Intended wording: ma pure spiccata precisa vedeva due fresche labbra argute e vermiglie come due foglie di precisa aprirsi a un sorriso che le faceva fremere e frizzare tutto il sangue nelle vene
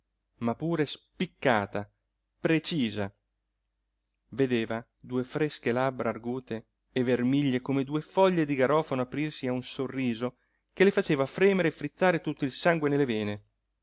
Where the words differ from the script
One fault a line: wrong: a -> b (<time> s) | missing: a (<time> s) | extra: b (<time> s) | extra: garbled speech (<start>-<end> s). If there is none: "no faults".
wrong: precisa -> garofano (8.5 s)